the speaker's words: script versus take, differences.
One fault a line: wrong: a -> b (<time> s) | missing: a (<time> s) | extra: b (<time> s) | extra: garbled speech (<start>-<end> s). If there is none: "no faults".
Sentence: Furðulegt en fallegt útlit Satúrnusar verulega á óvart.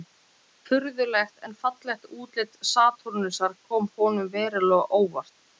extra: kom honum (3.7 s)